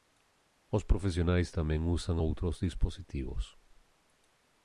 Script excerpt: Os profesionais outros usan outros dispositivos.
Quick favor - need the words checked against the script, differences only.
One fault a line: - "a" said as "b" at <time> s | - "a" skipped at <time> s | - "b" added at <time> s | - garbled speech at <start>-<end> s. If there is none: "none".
- "outros" said as "tamén" at 1.6 s